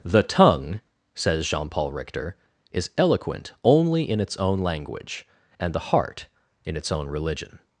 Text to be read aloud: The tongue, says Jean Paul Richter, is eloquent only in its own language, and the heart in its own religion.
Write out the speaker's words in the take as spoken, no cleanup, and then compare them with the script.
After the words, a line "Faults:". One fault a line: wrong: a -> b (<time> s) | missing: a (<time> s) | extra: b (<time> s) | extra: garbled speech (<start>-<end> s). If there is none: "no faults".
The tongue, says Jean Paul Richter, is eloquent only in its own language, and the heart in its own religion.
Faults:
no faults